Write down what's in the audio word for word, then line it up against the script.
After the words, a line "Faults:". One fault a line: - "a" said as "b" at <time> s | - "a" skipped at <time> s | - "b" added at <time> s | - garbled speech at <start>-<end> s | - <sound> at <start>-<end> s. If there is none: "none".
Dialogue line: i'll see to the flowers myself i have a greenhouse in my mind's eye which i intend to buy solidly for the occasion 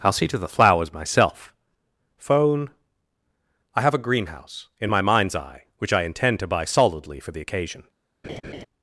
i'll see to the flowers myself phone i have a greenhouse in my mind's eye which i intend to buy solidly for the occasion
Faults:
- "phone" added at 2.2 s
- laugh at 8.2-8.7 s